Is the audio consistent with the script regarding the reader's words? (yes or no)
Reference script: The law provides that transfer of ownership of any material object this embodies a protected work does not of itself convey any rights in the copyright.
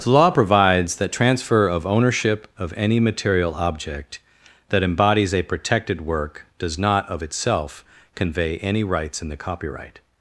no